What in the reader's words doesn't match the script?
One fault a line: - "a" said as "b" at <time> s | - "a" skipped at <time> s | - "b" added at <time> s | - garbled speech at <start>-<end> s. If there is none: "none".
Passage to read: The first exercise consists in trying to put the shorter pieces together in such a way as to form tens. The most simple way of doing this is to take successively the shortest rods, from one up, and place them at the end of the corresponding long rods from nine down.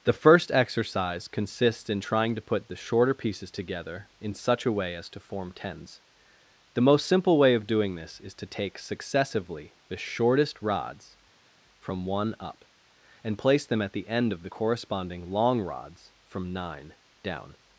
none